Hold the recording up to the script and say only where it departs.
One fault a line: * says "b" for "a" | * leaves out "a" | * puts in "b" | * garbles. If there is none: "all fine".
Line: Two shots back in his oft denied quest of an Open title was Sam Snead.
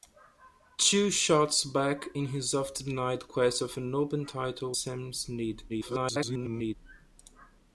* leaves out "was"
* garbles